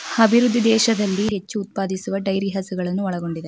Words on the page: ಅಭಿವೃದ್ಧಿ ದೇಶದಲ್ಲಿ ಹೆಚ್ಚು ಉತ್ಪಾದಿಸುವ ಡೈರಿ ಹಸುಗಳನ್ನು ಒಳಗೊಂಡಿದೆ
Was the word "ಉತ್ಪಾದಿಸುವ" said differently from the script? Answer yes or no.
no